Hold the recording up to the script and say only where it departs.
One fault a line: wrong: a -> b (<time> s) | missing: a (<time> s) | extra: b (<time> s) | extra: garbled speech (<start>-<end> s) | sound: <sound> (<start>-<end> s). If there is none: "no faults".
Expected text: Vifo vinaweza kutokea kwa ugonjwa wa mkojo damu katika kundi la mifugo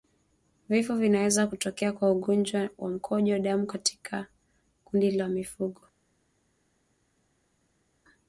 no faults